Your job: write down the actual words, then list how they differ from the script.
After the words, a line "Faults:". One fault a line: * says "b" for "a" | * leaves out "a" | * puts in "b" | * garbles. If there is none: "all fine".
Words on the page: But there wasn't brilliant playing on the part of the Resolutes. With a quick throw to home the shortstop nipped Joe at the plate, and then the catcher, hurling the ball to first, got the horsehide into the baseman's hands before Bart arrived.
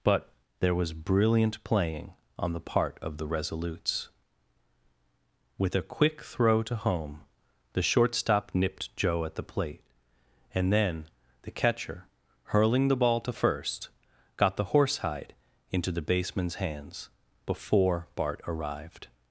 But there was brilliant playing on the part of the Resolutes. With a quick throw to home the shortstop nipped Joe at the plate, and then the catcher, hurling the ball to first, got the horsehide into the baseman's hands before Bart arrived.
Faults:
* says "was" for "wasn't"